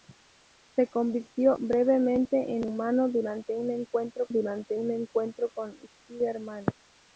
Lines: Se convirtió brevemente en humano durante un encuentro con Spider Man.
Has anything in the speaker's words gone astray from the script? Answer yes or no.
yes